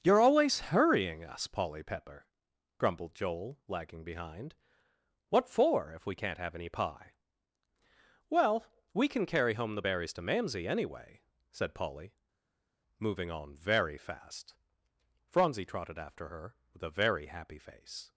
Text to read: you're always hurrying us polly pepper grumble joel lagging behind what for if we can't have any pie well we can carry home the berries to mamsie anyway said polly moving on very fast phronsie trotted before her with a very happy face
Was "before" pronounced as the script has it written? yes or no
no